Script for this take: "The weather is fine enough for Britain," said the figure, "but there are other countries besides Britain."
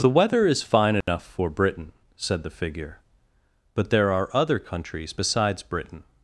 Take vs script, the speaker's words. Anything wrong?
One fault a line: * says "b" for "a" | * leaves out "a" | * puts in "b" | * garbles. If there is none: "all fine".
all fine